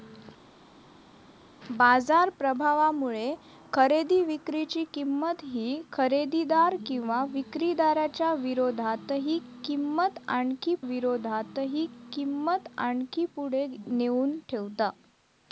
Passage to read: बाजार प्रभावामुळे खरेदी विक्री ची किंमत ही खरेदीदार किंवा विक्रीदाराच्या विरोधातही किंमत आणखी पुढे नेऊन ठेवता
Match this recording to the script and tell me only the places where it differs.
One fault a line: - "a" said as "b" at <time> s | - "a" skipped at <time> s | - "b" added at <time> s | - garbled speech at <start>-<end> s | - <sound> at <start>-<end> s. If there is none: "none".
- "विरोधातही किंमत आणखी" added at 10.8 s